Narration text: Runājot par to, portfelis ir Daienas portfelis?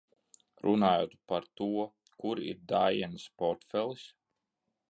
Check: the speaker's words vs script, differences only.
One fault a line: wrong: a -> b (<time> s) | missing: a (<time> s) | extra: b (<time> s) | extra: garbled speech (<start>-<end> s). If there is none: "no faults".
wrong: portfelis -> kur (2.2 s)